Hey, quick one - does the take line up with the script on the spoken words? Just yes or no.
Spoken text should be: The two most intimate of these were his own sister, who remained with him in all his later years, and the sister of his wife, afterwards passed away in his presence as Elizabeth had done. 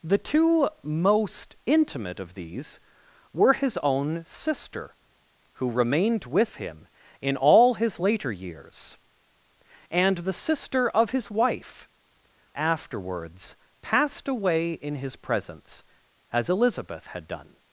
yes